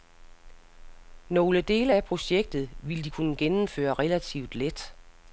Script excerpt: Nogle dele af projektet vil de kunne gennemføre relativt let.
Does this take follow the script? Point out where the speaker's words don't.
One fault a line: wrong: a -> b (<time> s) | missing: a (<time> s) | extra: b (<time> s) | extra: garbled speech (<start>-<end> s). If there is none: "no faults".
no faults